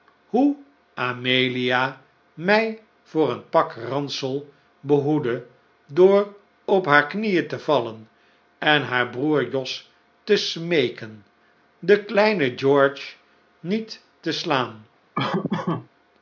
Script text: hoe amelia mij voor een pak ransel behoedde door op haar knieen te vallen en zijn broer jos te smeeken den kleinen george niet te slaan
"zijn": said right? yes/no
no